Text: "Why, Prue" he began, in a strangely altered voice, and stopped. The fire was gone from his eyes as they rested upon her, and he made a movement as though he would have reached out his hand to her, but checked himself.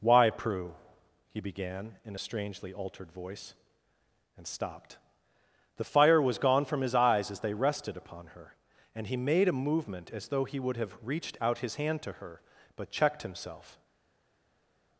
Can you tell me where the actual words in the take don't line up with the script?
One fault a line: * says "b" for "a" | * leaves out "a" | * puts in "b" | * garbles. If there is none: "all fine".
all fine